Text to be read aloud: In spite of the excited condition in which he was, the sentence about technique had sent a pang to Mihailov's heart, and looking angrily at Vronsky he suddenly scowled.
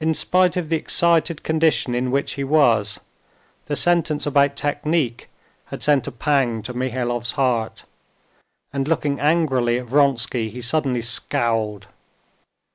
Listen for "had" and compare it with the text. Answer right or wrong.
right